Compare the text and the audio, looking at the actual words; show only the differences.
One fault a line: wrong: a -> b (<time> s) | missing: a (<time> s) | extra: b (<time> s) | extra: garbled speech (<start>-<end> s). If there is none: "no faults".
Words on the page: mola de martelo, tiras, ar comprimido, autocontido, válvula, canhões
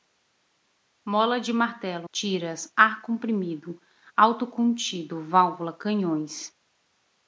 no faults